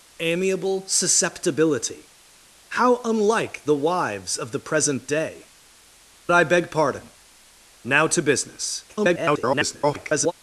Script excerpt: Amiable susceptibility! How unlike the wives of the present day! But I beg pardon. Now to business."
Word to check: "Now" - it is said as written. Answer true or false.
true